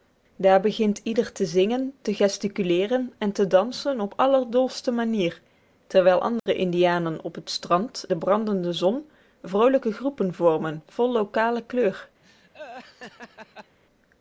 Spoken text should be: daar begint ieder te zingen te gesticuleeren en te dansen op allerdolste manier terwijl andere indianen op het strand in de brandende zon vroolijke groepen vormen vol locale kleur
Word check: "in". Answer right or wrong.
wrong